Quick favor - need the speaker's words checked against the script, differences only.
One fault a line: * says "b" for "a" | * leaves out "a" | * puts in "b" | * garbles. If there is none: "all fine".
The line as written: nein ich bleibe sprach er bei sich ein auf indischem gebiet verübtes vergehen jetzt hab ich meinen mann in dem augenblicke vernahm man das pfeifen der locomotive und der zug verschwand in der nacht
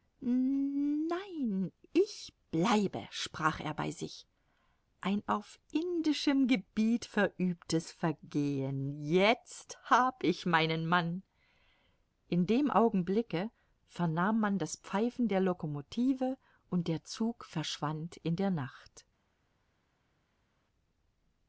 all fine